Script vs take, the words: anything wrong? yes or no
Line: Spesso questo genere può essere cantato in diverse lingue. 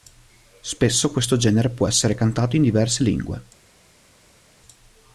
no